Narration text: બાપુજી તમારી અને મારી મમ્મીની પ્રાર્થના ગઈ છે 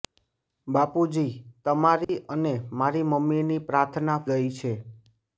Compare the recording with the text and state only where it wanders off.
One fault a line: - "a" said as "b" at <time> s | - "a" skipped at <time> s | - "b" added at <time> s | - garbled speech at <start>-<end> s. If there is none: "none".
none